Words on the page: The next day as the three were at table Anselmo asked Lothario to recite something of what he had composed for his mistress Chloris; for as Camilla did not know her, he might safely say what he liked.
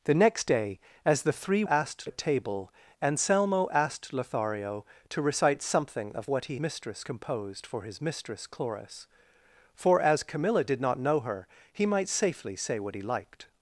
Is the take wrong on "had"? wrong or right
wrong